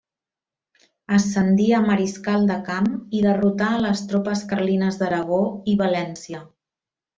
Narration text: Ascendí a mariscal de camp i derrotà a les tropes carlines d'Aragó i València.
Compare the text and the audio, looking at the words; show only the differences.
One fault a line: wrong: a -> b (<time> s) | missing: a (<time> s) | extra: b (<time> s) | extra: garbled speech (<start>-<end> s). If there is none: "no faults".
no faults